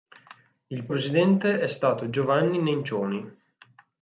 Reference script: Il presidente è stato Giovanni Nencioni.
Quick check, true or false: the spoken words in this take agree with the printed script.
true